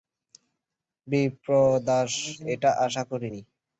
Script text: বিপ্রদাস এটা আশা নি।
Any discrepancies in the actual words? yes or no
yes